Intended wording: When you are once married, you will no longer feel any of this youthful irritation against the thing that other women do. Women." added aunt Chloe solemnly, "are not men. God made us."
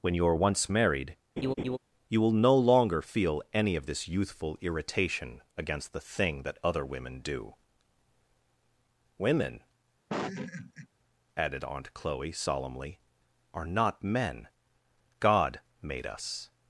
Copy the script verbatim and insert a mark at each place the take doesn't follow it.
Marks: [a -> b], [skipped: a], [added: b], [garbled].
When you are once married, you will no longer feel any of this youthful irritation against the thing that other women do. Women." added aunt Chloe solemnly, "are not men. God made us."